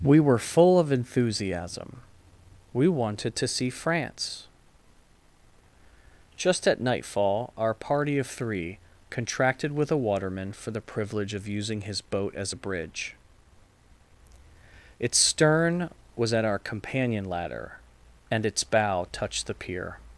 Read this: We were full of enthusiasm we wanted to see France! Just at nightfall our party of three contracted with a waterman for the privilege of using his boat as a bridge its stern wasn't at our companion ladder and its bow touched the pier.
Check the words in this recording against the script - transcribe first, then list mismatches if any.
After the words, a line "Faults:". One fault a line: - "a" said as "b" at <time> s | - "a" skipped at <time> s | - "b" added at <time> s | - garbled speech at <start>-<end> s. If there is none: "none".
We were full of enthusiasm we wanted to see France! Just at nightfall our party of three contracted with a waterman for the privilege of using his boat as a bridge its stern was at our companion ladder and its bow touched the pier.
Faults:
- "wasn't" said as "was" at 16.1 s